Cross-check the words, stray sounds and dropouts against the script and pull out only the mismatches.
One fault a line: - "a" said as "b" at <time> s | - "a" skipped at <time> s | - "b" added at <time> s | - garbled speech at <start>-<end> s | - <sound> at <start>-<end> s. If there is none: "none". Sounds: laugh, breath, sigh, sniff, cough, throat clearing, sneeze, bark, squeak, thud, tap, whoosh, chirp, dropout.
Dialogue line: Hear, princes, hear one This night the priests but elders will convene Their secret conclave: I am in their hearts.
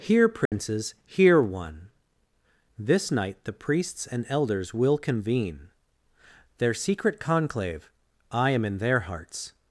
- dropout at 0.5-0.5 s
- "but" said as "and" at 4.1 s